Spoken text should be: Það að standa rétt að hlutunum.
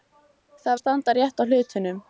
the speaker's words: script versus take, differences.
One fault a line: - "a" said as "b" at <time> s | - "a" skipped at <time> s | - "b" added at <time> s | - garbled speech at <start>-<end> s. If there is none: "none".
none